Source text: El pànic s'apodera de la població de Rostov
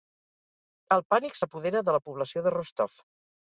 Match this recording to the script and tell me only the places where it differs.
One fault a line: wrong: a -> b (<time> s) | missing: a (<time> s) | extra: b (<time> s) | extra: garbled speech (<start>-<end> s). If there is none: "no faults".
no faults